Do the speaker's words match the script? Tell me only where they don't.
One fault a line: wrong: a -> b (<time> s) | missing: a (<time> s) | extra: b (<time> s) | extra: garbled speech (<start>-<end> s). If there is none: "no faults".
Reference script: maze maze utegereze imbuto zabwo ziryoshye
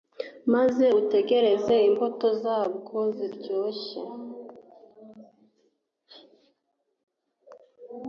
missing: maze (0.8 s)